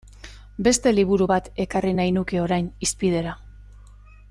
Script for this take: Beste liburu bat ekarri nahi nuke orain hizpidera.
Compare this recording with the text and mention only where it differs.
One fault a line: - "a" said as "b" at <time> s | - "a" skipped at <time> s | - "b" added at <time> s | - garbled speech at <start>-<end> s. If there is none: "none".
none